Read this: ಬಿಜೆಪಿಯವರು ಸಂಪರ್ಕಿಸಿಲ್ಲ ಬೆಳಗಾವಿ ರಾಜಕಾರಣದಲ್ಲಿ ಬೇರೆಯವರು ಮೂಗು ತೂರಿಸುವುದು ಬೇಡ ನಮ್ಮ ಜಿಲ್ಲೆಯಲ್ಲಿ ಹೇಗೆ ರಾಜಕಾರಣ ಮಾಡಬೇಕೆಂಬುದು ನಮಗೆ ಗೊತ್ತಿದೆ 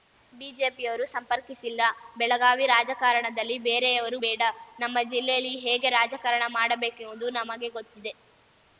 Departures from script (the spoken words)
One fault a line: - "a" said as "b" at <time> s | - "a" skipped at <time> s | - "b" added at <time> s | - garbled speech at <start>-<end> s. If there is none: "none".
- "ಮೂಗು ತೂರಿಸುವುದು" skipped at 4.2 s